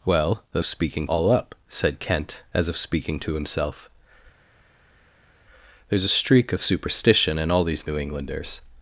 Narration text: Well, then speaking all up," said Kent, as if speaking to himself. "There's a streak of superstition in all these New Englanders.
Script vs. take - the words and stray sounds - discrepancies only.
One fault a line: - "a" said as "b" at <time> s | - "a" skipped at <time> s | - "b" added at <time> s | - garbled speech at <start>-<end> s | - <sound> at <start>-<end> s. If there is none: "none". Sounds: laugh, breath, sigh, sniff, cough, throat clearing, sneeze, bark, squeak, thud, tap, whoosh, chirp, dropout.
none